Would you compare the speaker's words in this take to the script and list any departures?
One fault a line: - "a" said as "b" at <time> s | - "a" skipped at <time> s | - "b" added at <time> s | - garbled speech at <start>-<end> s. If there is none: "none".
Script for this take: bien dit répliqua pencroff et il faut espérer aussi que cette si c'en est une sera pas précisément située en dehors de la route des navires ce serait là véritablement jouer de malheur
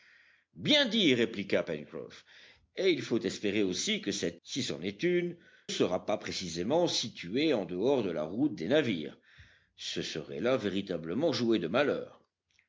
none